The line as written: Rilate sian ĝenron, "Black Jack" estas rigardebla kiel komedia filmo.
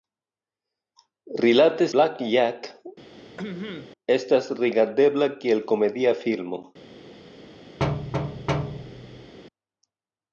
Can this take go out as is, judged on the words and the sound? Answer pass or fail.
fail